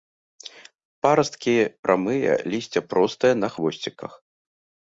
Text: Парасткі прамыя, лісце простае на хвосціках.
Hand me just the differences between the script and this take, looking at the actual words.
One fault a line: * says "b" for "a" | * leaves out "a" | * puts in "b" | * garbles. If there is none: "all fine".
all fine